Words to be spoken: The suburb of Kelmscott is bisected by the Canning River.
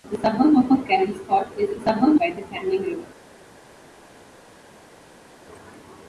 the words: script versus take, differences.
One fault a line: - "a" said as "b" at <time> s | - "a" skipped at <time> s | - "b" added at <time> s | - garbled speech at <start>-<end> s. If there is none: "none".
- "of" added at 0.7 s
- "bisected" said as "suburb" at 1.8 s